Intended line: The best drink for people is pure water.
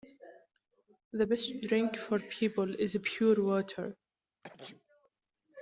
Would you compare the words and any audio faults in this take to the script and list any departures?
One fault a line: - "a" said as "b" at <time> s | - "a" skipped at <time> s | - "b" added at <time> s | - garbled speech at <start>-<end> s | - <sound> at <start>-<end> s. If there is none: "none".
- sneeze at 4.4-5.1 s